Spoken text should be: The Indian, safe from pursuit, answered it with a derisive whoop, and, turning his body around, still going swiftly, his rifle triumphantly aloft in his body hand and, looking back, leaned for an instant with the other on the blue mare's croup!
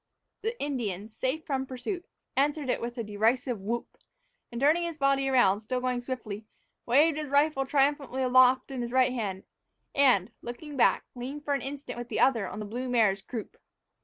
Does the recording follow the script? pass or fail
fail